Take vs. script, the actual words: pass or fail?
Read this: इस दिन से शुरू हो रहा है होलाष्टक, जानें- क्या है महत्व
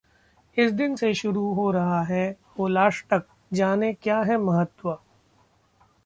pass